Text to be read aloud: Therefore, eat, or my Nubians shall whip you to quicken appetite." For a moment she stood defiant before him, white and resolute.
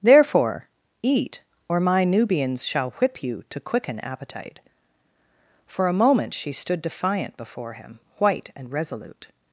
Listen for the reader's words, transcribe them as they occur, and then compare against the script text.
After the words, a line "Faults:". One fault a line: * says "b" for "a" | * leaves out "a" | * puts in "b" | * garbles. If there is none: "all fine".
Therefore, eat, or my Nubians shall whip you to quicken appetite." For a moment she stood defiant before him, white and resolute.
Faults:
all fine